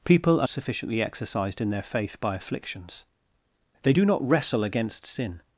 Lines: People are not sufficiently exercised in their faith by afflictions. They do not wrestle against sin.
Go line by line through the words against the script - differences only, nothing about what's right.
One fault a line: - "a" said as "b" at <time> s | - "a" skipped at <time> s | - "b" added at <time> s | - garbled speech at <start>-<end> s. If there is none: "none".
- "not" skipped at 0.5 s